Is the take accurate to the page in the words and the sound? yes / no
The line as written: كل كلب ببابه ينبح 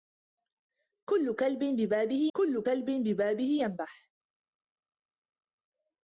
no